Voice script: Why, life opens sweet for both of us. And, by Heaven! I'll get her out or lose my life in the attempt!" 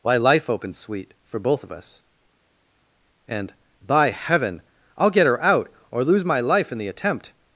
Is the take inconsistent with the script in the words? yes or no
no